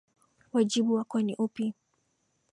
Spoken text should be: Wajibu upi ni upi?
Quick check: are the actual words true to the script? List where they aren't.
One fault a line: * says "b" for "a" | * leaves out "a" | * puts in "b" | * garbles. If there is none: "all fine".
* says "wako" for "upi"